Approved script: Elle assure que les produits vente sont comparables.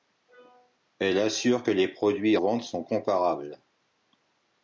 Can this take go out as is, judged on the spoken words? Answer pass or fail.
pass